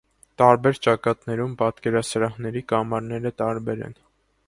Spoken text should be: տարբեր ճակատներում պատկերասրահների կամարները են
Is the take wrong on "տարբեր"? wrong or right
right